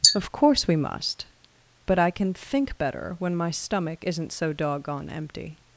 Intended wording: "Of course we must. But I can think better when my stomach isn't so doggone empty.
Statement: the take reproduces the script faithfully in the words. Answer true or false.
true